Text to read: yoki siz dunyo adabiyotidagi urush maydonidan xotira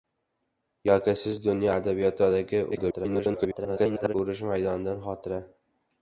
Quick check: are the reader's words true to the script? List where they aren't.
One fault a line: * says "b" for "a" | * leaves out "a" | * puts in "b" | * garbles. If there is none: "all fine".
* garbles